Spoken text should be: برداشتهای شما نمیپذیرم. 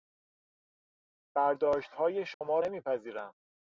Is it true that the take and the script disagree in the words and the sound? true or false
true